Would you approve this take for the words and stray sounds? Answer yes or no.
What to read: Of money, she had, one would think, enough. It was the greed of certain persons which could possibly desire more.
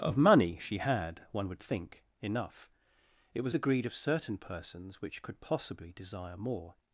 yes